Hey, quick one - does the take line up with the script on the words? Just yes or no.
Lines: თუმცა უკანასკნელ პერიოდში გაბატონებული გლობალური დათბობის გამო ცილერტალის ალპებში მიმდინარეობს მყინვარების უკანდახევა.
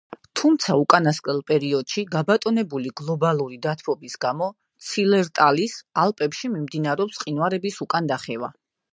yes